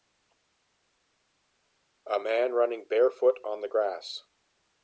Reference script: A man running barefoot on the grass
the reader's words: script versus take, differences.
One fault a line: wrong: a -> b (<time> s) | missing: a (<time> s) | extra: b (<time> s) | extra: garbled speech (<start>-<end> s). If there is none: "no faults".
no faults